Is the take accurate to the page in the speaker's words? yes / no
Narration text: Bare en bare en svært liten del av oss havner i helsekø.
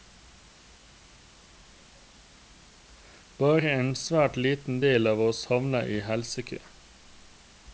no